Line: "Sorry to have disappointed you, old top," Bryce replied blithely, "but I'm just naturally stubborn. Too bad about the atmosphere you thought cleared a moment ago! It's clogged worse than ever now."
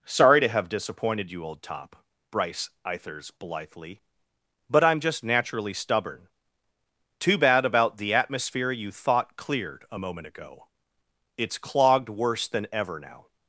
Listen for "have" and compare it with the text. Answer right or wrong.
right